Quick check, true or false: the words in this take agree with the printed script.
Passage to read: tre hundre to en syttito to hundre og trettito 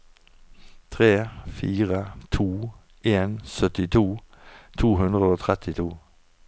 false